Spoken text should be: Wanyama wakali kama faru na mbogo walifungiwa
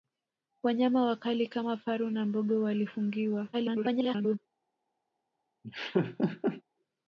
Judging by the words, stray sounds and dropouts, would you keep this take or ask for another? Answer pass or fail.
fail